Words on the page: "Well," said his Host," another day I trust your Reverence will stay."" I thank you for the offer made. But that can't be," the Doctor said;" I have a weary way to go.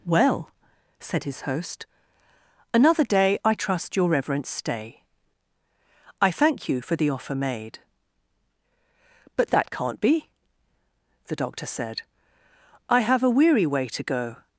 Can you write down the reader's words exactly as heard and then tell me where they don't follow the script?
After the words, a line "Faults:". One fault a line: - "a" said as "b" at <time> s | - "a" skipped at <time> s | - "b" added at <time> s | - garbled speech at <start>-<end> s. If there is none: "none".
"Well," said his Host," another day I trust your Reverence stay."" I thank you for the offer made. But that can't be," the Doctor said;" I have a weary way to go.
Faults:
- "will" skipped at 4.5 s